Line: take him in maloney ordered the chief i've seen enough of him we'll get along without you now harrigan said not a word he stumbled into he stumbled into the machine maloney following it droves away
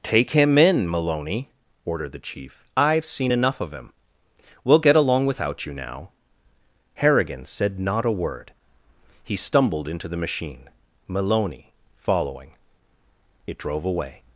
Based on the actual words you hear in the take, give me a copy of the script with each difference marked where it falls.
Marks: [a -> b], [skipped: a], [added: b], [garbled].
take him in maloney ordered the chief i've seen enough of him we'll get along without you now harrigan said not a word he stumbled into [skipped: he stumbled into] the machine maloney following it [droves -> drove] away